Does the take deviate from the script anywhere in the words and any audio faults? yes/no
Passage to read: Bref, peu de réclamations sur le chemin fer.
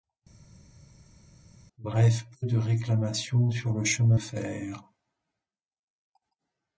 no